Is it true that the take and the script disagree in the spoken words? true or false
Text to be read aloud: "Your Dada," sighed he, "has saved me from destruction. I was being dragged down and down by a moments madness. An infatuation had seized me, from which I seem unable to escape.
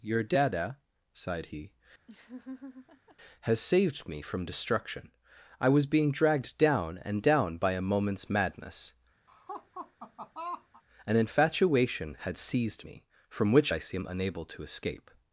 false